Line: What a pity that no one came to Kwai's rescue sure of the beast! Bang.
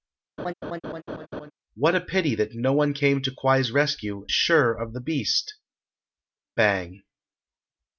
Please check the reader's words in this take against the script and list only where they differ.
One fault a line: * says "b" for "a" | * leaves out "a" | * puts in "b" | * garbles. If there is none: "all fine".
all fine